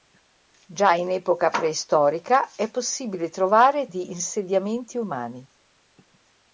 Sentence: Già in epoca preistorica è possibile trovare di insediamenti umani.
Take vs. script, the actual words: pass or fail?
pass